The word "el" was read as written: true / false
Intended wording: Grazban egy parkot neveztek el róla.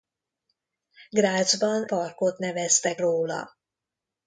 false